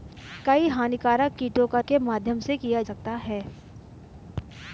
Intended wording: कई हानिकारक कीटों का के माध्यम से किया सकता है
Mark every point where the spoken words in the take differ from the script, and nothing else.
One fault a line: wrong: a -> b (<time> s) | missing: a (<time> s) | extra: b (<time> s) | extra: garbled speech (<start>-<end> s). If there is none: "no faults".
no faults